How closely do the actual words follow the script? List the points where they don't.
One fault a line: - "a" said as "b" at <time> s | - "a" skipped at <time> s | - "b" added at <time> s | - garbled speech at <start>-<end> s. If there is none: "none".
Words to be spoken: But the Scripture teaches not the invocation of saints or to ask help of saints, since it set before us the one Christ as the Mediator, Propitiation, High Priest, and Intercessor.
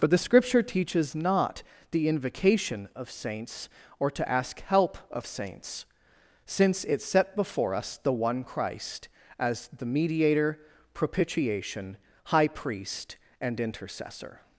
none